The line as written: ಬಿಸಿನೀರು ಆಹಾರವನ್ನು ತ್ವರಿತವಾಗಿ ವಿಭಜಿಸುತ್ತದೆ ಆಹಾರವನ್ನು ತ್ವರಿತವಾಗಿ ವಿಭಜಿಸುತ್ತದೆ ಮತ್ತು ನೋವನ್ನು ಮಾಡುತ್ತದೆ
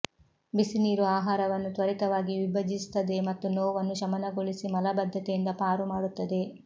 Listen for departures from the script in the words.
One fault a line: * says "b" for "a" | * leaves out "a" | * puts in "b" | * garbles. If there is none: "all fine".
* says "ಮತ್ತು ನೋವನ್ನು ಶಮನಗೊಳಿಸಿ ಮಲಬದ್ಧತೆಯಿಂದ ಪಾರು" for "ಆಹಾರವನ್ನು ತ್ವರಿತವಾಗಿ ವಿಭಜಿಸುತ್ತದೆ ಮತ್ತು ನೋವನ್ನು"